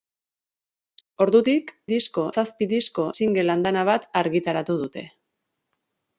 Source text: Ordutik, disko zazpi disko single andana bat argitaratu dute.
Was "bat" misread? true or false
false